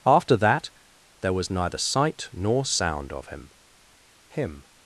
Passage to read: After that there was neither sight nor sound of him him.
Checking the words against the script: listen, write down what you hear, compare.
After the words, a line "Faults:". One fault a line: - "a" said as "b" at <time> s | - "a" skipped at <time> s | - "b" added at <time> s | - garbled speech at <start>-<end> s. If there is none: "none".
After that there was neither sight nor sound of him him.
Faults:
none